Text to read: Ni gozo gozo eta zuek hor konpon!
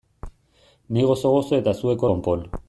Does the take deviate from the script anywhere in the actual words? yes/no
yes